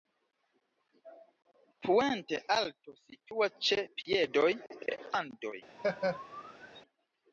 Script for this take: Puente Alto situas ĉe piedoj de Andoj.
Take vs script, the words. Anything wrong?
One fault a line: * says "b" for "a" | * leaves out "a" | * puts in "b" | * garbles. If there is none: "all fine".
all fine